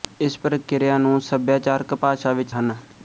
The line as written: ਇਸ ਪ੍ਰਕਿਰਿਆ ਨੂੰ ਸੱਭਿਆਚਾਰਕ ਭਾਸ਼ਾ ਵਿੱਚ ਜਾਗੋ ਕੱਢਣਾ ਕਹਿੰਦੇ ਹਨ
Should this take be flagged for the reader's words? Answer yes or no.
yes